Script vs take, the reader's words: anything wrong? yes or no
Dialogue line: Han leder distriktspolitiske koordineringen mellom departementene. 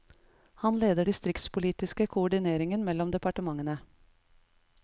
no